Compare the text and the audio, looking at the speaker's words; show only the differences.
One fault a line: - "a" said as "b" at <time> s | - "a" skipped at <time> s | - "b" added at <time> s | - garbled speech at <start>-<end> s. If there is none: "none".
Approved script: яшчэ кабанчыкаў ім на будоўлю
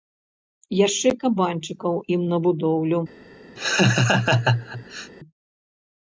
none